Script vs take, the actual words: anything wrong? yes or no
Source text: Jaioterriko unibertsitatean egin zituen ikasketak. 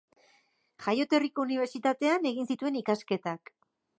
no